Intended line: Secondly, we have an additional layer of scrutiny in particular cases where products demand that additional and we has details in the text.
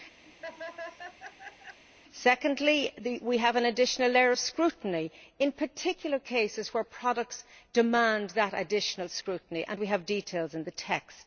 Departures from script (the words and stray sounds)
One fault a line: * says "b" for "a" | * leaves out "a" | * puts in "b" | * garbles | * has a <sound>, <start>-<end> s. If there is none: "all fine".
* has a laugh, 0.2-1.8 s
* puts in "scrutiny"
* says "have" for "has"